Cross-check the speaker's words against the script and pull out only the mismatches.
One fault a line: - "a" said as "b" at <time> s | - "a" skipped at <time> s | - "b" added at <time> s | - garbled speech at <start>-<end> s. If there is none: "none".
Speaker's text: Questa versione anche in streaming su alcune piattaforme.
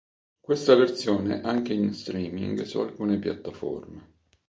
none